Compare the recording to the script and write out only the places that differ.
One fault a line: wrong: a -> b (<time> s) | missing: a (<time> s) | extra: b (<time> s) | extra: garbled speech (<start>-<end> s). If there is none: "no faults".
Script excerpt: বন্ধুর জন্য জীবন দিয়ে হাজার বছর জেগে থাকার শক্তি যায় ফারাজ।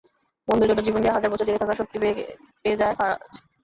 extra: পেয়ে (2.6 s)